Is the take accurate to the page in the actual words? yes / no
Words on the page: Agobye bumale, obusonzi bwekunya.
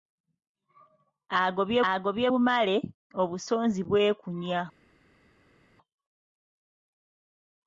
no